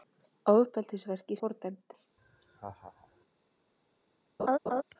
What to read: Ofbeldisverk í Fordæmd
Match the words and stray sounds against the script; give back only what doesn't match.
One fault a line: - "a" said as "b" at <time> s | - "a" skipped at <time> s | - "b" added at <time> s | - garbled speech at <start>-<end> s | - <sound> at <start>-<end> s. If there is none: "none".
- laugh at 2.2-3.2 s
- laugh at 4.4-4.8 s